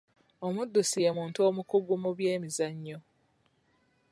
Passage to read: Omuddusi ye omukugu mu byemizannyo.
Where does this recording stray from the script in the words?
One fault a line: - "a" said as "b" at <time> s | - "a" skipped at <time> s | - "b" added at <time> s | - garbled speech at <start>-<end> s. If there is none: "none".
- "muntu" added at 1.2 s